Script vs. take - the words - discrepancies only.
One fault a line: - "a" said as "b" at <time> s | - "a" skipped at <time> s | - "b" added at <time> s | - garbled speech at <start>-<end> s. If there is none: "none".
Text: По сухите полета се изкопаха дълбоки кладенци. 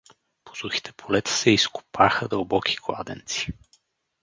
none